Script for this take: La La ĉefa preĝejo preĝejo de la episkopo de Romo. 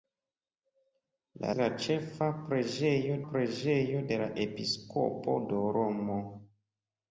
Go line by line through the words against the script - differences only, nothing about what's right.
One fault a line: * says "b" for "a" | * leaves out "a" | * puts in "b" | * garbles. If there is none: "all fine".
all fine